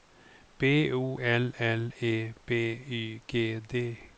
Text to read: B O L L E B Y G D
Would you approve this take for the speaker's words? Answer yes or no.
yes